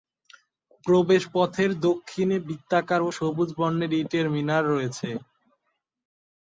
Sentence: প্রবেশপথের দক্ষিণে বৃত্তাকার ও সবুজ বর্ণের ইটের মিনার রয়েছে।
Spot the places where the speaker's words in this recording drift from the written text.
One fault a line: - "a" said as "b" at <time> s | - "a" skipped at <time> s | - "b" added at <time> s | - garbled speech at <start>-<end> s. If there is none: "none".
none